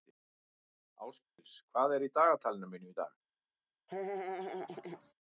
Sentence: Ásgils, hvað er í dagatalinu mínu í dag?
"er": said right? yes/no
yes